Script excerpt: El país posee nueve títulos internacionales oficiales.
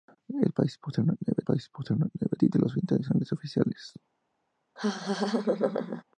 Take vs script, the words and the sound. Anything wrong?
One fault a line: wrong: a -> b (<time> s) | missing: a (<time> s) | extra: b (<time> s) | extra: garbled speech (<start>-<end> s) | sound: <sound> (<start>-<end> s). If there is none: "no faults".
extra: país posee nueve (1.4 s)
sound: laugh (4.8-6.0 s)